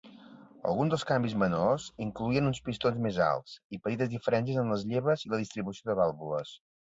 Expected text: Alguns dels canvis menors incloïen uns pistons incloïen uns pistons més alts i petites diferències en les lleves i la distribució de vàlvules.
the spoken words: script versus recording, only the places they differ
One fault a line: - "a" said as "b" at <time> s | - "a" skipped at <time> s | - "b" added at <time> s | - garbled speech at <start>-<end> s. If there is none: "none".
- "incloïen uns pistons" skipped at 3.0 s